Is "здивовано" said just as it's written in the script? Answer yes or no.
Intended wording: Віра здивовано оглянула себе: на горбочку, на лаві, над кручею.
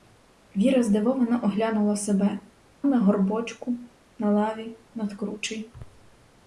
yes